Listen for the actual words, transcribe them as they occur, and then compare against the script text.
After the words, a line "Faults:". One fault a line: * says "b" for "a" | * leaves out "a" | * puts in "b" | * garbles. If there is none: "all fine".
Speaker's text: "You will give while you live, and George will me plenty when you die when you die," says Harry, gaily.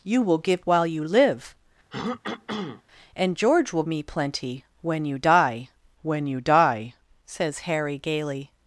"You will give while you live, and George will me plenty when you die when you die," says Harry, gaily.
Faults:
all fine